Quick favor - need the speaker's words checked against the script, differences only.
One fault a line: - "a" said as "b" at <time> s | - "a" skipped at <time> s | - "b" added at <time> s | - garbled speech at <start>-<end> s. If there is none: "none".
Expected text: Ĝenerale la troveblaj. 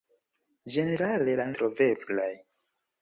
none